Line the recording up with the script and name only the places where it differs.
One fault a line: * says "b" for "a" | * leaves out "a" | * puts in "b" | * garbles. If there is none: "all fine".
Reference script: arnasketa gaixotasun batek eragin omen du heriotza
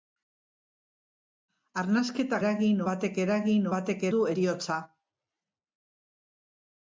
* says "eragin" for "gaixotasun"
* says "batek" for "omen"